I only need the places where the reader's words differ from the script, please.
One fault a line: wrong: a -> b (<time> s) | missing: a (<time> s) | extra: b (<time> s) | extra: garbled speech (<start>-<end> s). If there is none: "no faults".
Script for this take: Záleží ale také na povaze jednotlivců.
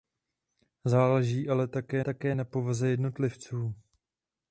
extra: také (2.0 s)